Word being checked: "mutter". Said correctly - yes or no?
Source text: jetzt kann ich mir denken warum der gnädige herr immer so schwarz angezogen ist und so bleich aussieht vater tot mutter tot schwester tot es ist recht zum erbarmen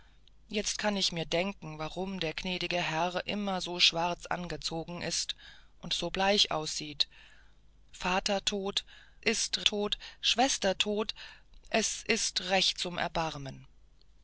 no